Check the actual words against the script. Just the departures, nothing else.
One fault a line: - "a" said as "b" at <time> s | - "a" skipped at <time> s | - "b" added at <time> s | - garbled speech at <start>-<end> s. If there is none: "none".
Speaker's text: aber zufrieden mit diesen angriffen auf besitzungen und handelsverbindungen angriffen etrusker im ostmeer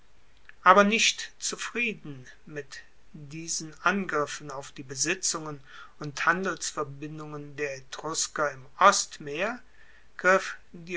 - "nicht" added at 0.8 s
- "die" added at 4.7 s
- "angriffen" said as "der" at 7.6 s